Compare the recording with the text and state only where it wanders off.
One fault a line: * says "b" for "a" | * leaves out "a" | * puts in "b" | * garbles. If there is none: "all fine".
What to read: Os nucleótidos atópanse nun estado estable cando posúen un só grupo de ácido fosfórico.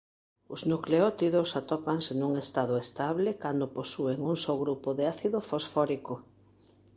all fine